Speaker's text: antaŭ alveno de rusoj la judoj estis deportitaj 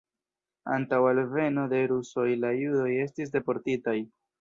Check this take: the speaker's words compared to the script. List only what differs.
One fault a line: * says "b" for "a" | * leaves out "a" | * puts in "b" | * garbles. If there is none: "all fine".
all fine